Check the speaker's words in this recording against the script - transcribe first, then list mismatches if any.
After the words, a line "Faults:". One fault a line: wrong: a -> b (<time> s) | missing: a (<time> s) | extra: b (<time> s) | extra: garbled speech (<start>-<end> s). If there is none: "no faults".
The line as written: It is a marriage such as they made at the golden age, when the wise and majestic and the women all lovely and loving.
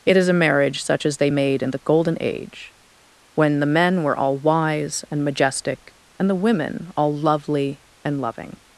It is a marriage such as they made in the golden age, when the men were all wise and majestic and the women all lovely and loving.
Faults:
wrong: at -> in (1.6 s)
extra: men were all (3.6 s)